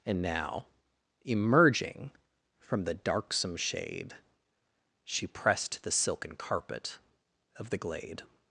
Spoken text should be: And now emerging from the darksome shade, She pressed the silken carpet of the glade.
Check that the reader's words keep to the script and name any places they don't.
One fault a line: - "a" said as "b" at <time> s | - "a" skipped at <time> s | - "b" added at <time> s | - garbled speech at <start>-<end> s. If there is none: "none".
none